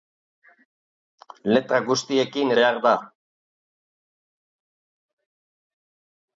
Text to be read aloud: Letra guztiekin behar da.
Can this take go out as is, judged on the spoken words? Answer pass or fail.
pass